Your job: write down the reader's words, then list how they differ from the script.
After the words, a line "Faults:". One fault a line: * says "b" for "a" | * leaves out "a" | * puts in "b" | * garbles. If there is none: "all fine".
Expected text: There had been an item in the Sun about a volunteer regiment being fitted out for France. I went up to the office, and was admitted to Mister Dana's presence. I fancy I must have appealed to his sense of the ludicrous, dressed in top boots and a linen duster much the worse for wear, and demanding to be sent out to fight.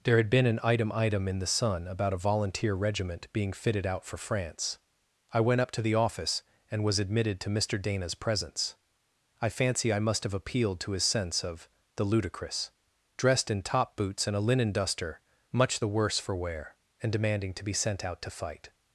There had been an item item in the Sun about a volunteer regiment being fitted out for France. I went up to the office, and was admitted to Mister Dana's presence. I fancy I must have appealed to his sense of the ludicrous, dressed in top boots and a linen duster much the worse for wear, and demanding to be sent out to fight.
Faults:
* puts in "item"